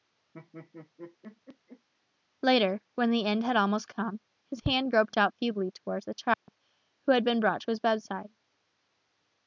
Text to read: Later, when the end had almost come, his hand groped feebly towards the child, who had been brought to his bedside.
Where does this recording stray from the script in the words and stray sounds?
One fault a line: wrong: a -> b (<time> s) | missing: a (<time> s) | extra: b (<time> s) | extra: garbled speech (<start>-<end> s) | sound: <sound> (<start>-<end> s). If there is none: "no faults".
sound: laugh (0.3-1.9 s)
extra: out (5.2 s)
sound: dropout (6.3-6.5 s)